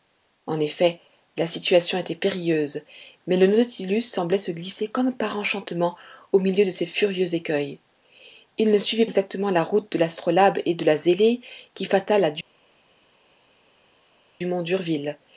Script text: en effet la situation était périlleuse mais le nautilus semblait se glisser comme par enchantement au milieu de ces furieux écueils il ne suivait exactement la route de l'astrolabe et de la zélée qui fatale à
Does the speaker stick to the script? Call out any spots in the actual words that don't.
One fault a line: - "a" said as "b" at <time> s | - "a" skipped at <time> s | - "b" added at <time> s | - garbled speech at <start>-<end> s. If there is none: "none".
none